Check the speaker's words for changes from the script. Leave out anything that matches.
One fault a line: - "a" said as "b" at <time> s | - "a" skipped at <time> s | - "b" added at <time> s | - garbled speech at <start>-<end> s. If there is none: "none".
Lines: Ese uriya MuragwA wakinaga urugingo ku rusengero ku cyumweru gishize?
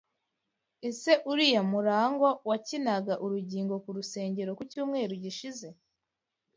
none